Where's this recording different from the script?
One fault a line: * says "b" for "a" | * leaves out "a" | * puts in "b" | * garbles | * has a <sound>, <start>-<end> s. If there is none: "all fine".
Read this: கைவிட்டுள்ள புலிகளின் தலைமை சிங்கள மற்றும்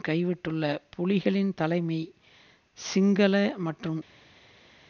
all fine